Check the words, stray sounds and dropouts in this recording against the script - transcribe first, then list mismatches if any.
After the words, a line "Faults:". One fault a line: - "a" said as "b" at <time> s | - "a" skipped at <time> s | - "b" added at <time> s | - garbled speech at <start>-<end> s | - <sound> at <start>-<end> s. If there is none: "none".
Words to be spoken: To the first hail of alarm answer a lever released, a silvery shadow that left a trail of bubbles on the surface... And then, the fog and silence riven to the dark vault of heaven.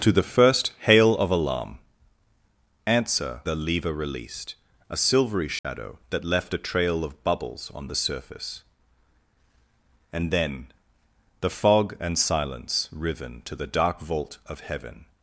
To the first hail of alarm answer a lever released, a silvery shadow that left a trail of bubbles on the surface... And then, the fog and silence riven to the dark vault of heaven.
Faults:
- dropout at 5.6-5.6 s